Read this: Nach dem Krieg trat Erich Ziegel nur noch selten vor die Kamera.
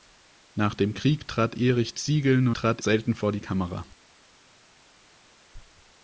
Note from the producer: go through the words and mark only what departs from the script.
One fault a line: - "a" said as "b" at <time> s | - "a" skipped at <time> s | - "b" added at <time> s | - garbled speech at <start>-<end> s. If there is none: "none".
- "noch" said as "trat" at 2.5 s